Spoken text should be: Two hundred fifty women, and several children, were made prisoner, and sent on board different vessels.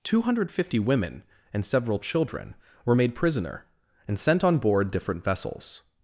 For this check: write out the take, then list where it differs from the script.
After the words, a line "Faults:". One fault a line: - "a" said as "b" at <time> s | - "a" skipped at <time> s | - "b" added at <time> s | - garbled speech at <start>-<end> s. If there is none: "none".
Two hundred fifty women, and several children, were made prisoner, and sent on board different vessels.
Faults:
none